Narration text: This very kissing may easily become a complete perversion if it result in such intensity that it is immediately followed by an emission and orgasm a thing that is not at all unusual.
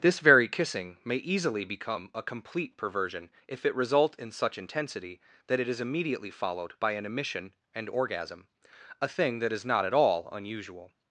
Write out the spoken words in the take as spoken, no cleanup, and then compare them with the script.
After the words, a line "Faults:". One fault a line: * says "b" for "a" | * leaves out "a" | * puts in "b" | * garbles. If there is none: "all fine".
This very kissing may easily become a complete perversion if it result in such intensity that it is immediately followed by an emission and orgasm a thing that is not at all unusual.
Faults:
all fine